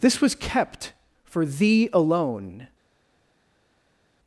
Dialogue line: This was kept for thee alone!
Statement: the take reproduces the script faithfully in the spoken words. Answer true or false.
true